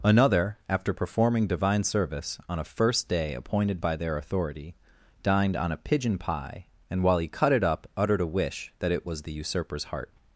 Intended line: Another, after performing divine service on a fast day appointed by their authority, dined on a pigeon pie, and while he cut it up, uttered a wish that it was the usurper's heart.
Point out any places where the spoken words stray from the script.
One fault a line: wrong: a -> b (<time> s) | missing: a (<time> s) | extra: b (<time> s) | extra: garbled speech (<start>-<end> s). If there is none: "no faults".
wrong: fast -> first (2.6 s)